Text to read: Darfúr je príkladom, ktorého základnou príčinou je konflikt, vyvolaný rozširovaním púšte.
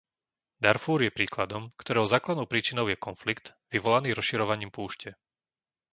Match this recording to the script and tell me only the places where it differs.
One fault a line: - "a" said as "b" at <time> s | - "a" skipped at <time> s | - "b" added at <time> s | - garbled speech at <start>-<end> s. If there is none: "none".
none